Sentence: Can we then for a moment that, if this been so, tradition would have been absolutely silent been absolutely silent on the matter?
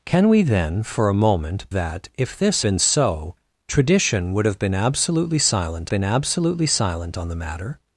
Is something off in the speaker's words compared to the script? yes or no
no